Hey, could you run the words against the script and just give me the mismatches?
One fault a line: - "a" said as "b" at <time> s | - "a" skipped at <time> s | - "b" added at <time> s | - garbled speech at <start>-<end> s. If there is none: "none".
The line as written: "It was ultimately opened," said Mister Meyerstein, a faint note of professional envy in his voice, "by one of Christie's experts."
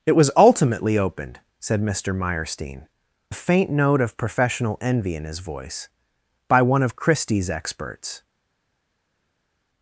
none